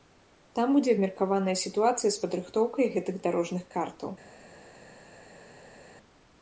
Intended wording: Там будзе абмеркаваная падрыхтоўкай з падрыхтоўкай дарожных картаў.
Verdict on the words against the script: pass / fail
fail